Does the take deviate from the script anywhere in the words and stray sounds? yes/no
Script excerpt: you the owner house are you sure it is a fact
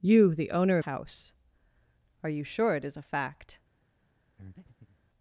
yes